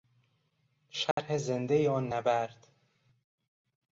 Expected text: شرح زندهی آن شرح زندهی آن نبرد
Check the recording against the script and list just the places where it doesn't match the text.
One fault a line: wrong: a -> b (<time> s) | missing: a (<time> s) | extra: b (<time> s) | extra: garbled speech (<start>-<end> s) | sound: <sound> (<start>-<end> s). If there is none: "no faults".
sound: dropout (1.1-1.2 s)
missing: شرح زندهی آن (2.1 s)